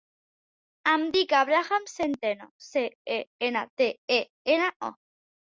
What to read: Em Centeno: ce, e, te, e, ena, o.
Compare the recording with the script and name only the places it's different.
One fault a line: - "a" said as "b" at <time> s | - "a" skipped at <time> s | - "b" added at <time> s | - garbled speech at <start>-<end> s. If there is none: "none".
- "dic Abraham" added at 1.1 s
- "ena" added at 3.5 s